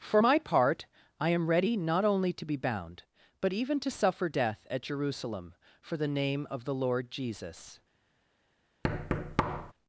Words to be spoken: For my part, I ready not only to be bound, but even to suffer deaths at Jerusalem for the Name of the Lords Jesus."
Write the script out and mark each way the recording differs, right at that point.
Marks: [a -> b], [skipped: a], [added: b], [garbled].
For my part, I [added: am] ready not only to be bound, but even to suffer [deaths -> death] at Jerusalem for the Name of the [Lords -> Lord] Jesus."